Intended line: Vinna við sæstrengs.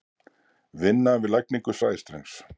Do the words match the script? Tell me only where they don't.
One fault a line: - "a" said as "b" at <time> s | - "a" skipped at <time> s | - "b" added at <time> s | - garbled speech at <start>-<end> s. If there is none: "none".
- "lagningu" added at 1.4 s